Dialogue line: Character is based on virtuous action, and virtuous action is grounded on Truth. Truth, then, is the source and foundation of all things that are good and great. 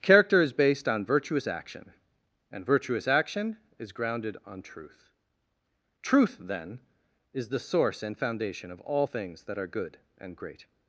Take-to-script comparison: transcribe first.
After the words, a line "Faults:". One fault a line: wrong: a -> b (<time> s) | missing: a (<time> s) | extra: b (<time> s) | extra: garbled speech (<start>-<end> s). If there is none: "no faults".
Character is based on virtuous action, and virtuous action is grounded on Truth. Truth, then, is the source and foundation of all things that are good and great.
Faults:
no faults